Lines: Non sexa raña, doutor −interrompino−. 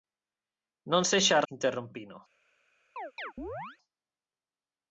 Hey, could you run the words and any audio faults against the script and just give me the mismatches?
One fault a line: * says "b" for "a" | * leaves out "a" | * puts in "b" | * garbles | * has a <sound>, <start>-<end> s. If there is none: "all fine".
* leaves out "raña doutor"
* has a chirp, 3.0-3.8 s